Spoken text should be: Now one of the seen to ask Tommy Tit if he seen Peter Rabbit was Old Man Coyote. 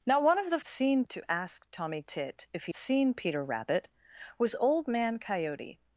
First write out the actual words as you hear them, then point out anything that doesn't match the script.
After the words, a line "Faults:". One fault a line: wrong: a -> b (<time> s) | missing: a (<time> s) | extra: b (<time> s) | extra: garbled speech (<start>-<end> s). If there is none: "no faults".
Now one of the seen to ask Tommy Tit if he seen Peter Rabbit was Old Man Coyote.
Faults:
no faults